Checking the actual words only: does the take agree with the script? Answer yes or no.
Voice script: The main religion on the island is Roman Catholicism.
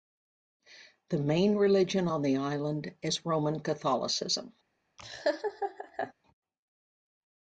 yes